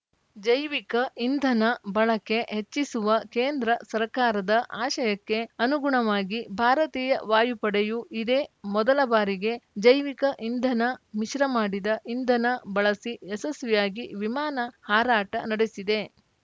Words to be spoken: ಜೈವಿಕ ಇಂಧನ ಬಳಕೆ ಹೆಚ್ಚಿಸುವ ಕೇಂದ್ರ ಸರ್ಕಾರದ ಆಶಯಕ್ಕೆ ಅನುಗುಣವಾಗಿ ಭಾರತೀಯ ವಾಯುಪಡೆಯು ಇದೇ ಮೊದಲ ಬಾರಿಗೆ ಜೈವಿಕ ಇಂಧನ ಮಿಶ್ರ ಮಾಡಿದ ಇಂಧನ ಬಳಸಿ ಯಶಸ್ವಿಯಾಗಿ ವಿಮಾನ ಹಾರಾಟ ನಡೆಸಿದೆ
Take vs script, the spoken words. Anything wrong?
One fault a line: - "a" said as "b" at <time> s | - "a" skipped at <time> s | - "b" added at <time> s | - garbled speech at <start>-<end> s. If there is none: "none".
none